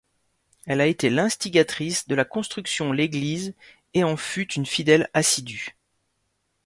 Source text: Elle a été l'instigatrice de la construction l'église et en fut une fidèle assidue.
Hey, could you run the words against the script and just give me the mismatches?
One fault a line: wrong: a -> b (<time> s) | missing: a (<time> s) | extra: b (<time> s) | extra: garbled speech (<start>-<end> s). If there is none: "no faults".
no faults